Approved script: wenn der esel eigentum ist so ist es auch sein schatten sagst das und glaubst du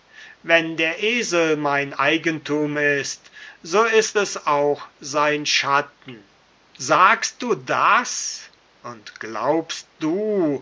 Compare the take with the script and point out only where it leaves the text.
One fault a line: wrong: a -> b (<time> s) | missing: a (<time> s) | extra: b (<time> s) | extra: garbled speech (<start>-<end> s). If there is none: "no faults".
extra: mein (1.6 s)
extra: du (7.4 s)